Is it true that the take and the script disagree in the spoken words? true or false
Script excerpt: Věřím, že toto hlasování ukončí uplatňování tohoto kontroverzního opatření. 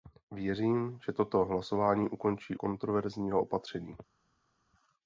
true